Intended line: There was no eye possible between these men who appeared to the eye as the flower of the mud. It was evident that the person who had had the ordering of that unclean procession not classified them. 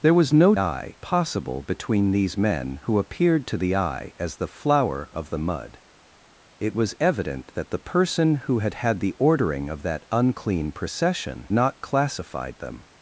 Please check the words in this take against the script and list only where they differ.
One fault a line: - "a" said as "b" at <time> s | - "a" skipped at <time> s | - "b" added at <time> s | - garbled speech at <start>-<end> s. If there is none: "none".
none